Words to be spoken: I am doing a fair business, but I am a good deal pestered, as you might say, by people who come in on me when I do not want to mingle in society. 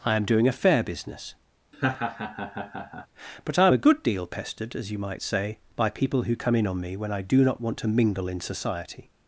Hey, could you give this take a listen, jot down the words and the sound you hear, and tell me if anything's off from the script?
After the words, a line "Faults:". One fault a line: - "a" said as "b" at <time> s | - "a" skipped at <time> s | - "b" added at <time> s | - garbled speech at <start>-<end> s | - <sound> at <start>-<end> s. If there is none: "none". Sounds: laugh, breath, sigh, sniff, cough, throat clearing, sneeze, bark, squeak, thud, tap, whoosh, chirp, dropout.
I am doing a fair business, but I am a good deal pestered, as you might say, by people who come in on me when I do not want to mingle in society.
Faults:
- laugh at 1.7-3.1 s